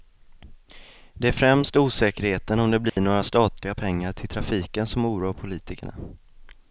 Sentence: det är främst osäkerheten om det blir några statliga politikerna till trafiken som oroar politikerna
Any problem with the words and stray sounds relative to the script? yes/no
yes